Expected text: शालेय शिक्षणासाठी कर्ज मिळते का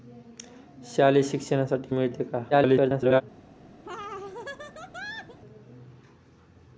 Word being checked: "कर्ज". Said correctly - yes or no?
no